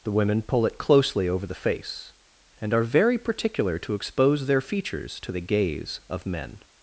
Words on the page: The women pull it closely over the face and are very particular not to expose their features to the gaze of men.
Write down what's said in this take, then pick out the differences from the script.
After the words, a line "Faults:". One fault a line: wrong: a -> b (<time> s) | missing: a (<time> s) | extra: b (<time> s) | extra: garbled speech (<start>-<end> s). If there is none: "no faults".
The women pull it closely over the face and are very particular to expose their features to the gaze of men.
Faults:
missing: not (3.8 s)